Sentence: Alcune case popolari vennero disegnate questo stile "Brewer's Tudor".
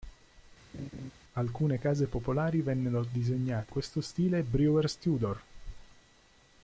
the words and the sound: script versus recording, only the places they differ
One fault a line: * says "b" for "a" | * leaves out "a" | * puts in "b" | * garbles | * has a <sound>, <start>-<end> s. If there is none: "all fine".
* has a laugh, 0.7-1.1 s